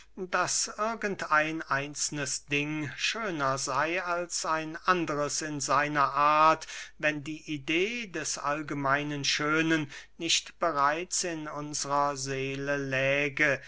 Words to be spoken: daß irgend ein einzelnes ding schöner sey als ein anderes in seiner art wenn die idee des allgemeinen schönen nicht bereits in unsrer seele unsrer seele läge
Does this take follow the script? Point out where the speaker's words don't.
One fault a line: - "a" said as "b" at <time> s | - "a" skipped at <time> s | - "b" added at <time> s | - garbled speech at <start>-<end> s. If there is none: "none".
- "unsrer seele" skipped at 12.8 s